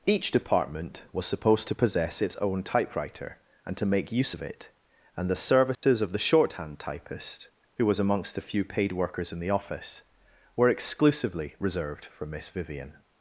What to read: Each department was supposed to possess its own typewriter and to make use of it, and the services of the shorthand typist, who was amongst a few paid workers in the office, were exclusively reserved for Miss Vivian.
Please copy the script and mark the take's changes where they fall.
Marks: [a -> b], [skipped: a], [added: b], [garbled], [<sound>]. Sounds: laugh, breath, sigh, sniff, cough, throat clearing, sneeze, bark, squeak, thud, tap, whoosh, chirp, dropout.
Each department was supposed to possess its own typewriter and to make use of it, and the services [dropout] of the shorthand typist, who was amongst a few paid workers in the office, were exclusively reserved for Miss Vivian.